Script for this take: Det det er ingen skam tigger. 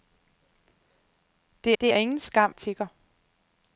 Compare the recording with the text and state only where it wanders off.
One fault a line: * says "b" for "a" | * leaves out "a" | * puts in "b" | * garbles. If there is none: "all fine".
all fine